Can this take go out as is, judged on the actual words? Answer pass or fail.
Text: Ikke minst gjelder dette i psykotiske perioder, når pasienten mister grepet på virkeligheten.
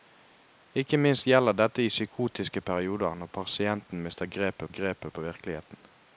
fail